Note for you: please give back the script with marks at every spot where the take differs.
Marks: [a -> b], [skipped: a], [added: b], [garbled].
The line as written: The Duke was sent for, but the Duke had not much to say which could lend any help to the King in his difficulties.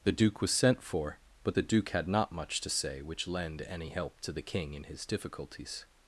The Duke was sent for, but the Duke had not much to say which [skipped: could] lend any help to the King in his difficulties.